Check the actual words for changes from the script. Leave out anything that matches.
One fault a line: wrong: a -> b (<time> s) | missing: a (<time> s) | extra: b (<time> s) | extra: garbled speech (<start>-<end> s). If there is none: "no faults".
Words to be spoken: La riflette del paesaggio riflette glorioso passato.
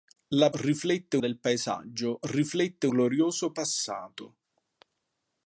no faults